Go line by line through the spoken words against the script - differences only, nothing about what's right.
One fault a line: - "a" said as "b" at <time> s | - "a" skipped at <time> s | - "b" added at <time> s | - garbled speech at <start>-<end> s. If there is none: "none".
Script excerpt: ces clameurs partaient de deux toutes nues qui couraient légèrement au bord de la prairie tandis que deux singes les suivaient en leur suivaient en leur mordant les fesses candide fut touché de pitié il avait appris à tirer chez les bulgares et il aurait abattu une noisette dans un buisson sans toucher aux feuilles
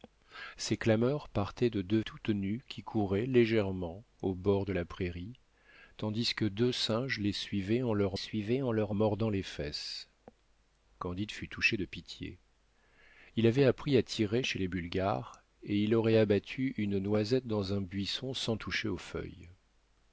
none